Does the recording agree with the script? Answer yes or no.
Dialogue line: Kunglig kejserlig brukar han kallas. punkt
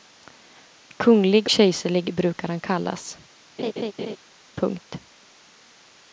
yes